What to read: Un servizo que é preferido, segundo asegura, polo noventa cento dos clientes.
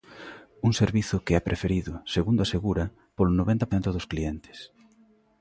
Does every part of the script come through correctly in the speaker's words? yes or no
yes